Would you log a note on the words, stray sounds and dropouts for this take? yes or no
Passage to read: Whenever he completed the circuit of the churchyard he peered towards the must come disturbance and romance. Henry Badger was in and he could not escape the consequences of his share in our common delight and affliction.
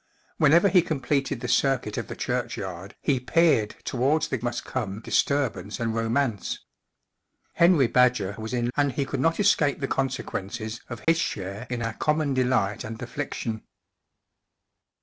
yes